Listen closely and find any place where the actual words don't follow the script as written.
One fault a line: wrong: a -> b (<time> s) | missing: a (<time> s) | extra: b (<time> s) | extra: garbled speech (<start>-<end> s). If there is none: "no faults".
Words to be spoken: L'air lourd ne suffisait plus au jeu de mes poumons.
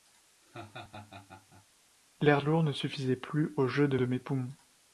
extra: de (3.9 s)